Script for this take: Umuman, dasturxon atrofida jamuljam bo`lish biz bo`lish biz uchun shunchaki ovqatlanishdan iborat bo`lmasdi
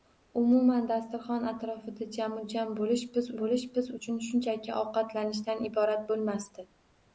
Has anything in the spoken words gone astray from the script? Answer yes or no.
no